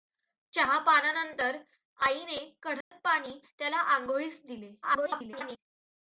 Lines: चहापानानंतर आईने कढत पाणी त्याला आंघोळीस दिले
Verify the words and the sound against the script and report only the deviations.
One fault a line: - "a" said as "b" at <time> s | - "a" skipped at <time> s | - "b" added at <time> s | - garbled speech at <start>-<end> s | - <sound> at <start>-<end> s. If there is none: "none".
- dropout at 2.8-2.9 s
- garbled speech at 4.8-5.6 s